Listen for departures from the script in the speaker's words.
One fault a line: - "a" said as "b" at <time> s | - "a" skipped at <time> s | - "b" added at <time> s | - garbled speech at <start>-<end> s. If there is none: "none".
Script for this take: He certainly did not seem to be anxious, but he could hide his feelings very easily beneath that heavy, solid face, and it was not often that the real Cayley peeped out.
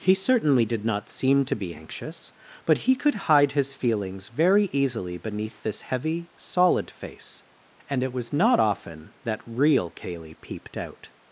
- "that" said as "this" at 5.6 s
- "the" skipped at 9.4 s